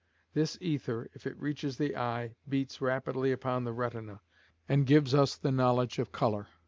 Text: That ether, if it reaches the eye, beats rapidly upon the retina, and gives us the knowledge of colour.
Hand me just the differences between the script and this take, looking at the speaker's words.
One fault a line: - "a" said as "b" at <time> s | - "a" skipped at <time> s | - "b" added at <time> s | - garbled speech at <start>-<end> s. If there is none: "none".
- "That" said as "This" at 0.3 s